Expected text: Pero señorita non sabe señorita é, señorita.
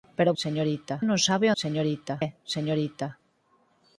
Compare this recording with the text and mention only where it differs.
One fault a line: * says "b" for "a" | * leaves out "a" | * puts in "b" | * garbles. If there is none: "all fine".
all fine